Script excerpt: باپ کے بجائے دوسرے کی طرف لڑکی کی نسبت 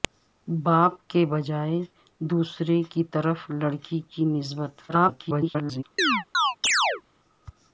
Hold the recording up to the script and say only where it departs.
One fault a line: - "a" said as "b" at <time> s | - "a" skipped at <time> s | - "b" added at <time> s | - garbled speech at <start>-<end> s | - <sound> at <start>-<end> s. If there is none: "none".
- garbled speech at 4.9-5.8 s
- chirp at 6.0-7.0 s